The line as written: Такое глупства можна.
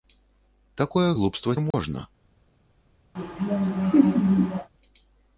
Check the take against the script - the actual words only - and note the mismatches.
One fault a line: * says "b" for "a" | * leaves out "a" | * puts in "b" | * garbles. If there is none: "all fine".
all fine